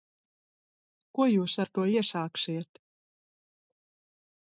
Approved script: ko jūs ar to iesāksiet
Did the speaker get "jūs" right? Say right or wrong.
right